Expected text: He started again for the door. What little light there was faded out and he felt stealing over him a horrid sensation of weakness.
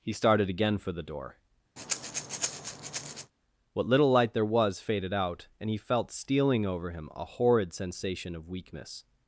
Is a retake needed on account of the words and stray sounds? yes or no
yes